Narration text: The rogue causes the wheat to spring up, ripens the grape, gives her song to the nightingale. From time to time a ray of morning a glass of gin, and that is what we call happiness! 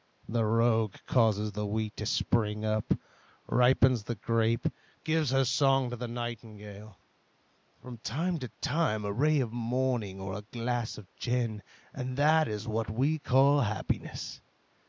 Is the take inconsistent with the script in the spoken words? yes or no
yes